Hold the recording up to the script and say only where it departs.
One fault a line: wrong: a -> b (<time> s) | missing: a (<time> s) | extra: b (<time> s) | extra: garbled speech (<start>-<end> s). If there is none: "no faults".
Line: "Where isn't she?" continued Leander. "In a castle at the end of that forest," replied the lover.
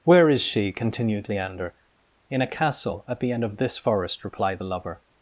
wrong: isn't -> is (0.3 s)
wrong: that -> this (3.6 s)